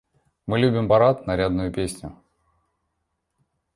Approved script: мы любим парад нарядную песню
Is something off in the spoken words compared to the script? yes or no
no